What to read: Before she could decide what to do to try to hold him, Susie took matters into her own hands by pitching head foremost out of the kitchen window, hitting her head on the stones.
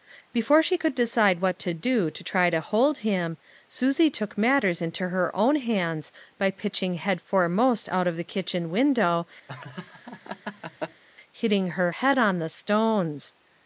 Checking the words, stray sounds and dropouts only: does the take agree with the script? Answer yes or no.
no